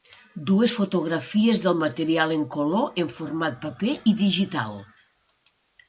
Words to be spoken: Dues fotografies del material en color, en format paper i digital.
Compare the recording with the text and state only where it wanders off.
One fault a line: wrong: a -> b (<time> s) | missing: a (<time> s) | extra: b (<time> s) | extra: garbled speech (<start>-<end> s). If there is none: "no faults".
no faults